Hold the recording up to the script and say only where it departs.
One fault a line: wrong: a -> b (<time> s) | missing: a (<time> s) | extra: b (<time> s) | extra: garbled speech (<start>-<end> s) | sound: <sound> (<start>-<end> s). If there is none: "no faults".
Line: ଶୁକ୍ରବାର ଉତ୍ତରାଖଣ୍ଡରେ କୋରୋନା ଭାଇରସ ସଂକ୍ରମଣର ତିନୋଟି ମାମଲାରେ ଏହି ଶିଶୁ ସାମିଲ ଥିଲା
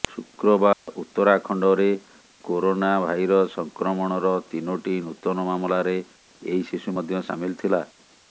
sound: dropout (0.7-0.9 s)
extra: ନୂତନ (5.0 s)
extra: ମଧ୍ୟ (6.9 s)